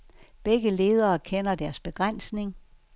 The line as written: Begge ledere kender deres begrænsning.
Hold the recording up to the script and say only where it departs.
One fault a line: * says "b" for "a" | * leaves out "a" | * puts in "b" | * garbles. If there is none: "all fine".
all fine